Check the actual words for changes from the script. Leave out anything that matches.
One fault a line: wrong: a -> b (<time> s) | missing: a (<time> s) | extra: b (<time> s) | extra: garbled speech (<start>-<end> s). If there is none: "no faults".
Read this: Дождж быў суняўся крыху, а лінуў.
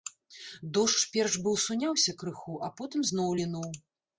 extra: перш (1.2 s)
extra: потым зноў (2.8 s)